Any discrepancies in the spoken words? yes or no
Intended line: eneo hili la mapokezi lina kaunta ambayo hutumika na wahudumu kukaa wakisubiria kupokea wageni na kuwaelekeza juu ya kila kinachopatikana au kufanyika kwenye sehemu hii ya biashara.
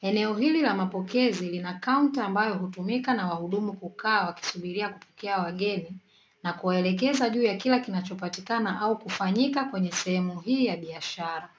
no